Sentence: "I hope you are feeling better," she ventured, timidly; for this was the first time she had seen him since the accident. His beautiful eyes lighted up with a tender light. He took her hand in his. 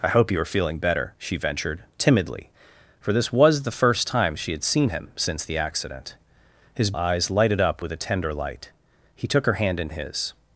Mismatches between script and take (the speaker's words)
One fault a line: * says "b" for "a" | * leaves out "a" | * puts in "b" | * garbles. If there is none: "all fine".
* leaves out "beautiful"